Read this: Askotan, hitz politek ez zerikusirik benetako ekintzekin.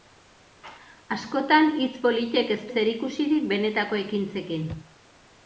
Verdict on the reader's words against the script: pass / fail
pass